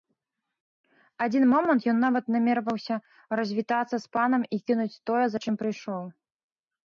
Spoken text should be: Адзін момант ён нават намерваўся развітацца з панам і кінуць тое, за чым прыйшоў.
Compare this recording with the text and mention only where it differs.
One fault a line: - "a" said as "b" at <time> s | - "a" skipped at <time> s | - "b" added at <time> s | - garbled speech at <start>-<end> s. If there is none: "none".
none